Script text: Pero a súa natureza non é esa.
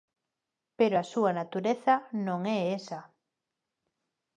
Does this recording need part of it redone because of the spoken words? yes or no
no